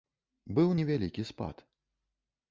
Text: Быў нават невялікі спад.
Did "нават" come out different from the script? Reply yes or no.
yes